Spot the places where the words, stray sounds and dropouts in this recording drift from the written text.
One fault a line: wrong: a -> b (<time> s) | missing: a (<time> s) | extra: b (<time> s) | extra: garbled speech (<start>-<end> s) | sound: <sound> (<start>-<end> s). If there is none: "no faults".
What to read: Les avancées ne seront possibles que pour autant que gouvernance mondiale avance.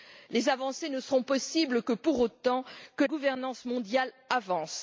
no faults